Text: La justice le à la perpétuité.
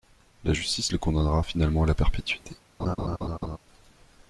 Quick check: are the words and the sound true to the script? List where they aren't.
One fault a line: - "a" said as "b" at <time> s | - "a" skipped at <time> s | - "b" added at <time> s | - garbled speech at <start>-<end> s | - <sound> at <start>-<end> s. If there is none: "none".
- "condamnera finalement" added at 1.0 s
- laugh at 2.8-3.6 s